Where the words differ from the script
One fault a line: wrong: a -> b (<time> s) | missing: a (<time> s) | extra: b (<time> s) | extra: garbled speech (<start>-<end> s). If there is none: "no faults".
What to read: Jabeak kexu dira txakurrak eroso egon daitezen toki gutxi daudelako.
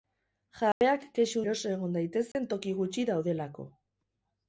missing: dira txakurrak (1.4 s)